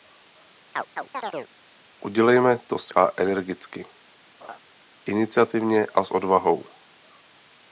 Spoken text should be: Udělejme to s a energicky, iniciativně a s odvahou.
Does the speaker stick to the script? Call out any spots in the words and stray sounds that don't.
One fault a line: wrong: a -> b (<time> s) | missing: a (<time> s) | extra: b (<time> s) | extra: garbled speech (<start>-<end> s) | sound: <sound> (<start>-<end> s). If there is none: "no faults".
sound: chirp (0.7-1.5 s)
sound: laugh (4.4-4.6 s)